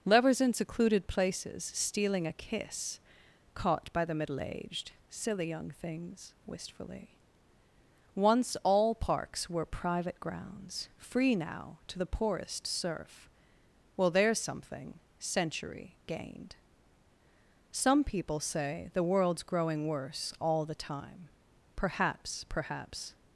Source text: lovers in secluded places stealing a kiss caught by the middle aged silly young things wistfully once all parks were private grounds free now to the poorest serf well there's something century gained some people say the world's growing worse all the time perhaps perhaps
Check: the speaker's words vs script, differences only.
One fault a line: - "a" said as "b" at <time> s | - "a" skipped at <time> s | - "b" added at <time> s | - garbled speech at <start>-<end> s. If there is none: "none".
none